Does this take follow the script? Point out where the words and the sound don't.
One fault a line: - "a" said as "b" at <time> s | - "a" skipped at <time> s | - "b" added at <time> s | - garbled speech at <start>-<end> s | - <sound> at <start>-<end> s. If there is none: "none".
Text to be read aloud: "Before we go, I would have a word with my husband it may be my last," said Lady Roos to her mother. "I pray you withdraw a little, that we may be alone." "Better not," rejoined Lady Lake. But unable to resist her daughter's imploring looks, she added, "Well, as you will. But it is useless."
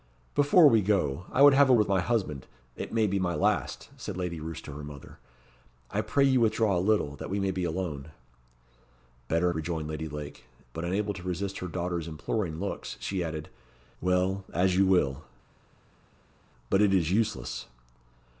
- "word" skipped at 1.8 s
- "not" skipped at 9.5 s